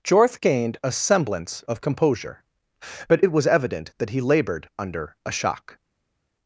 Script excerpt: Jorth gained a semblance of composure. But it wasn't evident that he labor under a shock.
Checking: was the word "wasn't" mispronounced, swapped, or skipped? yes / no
yes